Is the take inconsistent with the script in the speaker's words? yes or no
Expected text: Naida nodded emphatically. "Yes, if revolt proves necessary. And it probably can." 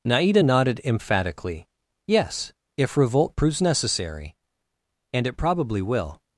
yes